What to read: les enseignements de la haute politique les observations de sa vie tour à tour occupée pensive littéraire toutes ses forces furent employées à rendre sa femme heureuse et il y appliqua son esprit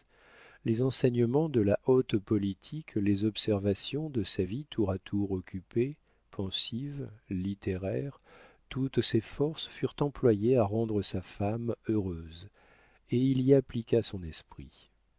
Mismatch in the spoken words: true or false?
false